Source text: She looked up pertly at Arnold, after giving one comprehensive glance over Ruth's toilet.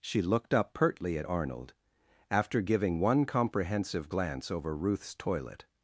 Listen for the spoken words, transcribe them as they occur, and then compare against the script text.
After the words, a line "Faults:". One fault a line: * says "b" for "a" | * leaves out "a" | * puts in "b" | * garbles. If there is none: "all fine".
She looked up pertly at Arnold, after giving one comprehensive glance over Ruth's toilet.
Faults:
all fine